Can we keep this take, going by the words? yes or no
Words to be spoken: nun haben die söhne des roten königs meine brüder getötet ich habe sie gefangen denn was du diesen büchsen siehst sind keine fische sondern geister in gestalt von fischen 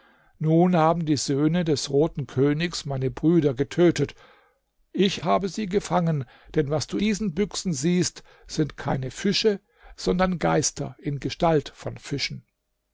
yes